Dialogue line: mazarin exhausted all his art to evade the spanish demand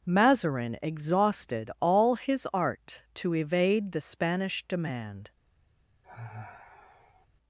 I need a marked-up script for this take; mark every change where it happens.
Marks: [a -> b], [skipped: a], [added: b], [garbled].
mazarin exhausted all his art to evade the spanish demand